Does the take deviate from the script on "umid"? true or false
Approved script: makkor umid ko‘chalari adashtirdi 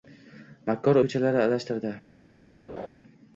true